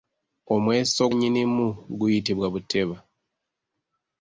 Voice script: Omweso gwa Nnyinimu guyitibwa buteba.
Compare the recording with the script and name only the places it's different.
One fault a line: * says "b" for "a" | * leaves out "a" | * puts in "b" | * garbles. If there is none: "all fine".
* leaves out "gwa"